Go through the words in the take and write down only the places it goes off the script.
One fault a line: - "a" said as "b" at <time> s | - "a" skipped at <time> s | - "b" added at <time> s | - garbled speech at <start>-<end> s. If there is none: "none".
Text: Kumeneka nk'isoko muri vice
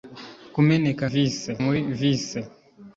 - "nk'isoko" said as "vice" at 1.1 s